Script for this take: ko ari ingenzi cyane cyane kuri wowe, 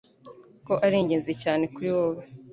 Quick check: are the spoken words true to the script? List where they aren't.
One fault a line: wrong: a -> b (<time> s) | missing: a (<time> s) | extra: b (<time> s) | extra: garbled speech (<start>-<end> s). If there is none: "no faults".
missing: cyane (1.6 s)